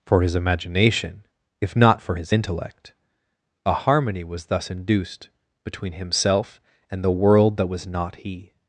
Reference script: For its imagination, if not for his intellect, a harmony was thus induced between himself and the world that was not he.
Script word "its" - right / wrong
wrong